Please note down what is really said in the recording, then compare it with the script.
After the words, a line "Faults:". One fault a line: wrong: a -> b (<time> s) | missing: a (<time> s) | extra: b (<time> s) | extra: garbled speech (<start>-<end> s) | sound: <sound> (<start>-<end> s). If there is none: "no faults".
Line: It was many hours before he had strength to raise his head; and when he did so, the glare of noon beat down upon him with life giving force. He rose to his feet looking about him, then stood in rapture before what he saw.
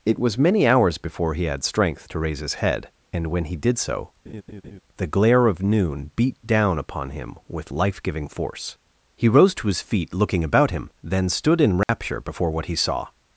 It was many hours before he had strength to raise his head; and when he did so, the glare of noon beat down upon him with life giving force. He rose to his feet looking about him, then stood in rapture before what he saw.
Faults:
sound: laugh (4.3-4.8 s)
sound: dropout (11.8-11.9 s)